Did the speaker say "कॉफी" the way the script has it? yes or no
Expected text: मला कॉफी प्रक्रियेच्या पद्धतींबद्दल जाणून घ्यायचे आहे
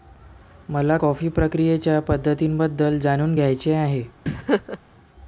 yes